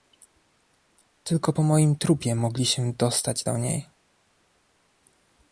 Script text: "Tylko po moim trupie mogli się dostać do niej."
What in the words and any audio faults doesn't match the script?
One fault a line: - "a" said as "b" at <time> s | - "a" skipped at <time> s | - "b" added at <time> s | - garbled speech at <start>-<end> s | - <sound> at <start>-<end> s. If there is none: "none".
none